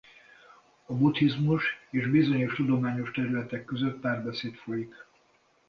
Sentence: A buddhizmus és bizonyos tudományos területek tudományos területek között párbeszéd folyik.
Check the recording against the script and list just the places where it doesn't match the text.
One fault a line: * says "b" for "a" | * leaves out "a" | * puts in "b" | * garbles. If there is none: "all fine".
* leaves out "tudományos területek"